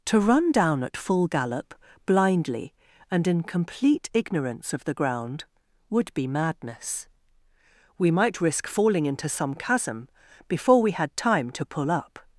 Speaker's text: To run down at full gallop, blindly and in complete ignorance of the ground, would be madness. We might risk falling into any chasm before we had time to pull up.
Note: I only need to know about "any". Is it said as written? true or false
false